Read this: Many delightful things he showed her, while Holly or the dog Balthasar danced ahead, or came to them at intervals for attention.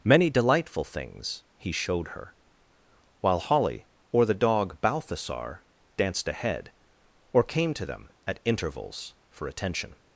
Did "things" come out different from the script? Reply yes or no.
no